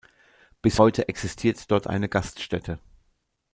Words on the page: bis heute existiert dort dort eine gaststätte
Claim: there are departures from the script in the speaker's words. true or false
true